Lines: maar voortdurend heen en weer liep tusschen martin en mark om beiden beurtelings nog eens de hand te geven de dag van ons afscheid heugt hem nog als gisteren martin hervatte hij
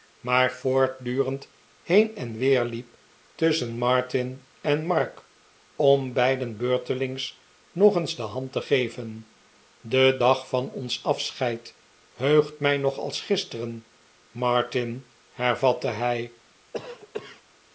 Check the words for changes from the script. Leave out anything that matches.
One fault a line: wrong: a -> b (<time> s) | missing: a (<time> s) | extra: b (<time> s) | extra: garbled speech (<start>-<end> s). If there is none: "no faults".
wrong: hem -> mij (12.6 s)